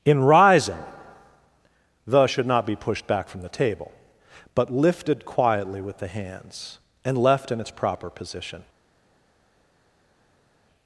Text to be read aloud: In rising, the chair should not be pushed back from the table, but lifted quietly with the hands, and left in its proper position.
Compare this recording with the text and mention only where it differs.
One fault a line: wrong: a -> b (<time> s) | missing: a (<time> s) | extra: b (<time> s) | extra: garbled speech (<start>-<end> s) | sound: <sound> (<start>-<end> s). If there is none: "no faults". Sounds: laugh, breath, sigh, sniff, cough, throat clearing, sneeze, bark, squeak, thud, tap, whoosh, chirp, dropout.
missing: chair (2.2 s)